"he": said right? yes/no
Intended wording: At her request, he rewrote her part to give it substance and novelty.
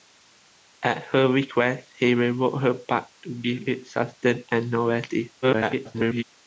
yes